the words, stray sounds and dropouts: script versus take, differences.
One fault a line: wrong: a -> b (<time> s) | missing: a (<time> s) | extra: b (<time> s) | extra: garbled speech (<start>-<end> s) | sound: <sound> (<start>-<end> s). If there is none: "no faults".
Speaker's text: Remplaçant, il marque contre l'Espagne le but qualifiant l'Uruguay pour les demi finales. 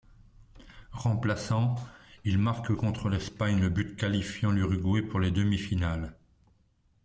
no faults